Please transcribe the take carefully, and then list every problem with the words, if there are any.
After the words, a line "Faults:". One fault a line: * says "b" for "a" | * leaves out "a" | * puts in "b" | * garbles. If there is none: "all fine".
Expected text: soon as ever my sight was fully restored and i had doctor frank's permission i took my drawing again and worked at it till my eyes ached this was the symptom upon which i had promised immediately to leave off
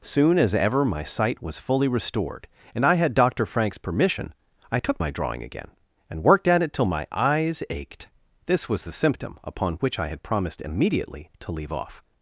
soon as ever my sight was fully restored and i had doctor frank's permission i took my drawing again and worked at it till my eyes ached this was the symptom upon which i had promised immediately to leave off
Faults:
all fine